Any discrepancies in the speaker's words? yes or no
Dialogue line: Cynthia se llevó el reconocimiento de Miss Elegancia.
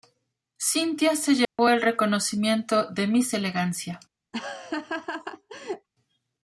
no